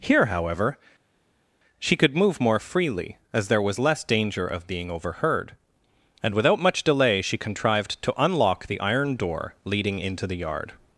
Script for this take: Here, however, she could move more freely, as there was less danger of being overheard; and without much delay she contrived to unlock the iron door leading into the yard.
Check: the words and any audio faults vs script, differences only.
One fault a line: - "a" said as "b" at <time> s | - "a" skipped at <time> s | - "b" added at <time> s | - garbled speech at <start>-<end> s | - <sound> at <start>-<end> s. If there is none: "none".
none